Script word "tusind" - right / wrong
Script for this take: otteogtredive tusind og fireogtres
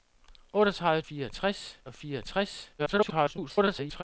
wrong